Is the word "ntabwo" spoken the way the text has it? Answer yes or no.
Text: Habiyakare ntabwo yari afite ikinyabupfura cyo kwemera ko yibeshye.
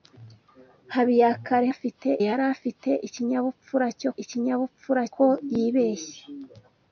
no